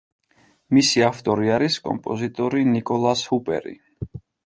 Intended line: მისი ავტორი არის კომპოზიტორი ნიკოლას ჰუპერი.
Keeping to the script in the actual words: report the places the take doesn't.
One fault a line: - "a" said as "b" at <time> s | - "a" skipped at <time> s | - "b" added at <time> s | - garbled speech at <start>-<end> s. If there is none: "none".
none